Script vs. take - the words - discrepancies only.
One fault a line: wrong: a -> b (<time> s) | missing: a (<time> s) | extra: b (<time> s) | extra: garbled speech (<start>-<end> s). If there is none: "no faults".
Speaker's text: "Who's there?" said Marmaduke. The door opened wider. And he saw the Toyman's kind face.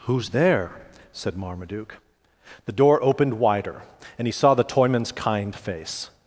no faults